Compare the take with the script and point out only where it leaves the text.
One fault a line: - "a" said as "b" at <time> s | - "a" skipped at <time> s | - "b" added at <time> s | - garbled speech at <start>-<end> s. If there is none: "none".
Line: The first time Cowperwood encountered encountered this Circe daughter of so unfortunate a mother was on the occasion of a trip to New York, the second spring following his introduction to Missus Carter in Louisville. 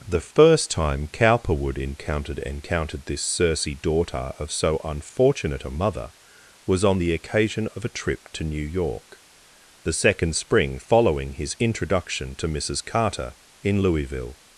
none